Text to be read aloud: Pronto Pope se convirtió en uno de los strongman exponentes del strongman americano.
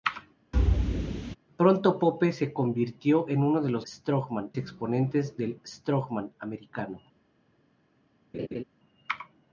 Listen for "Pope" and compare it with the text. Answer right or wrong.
right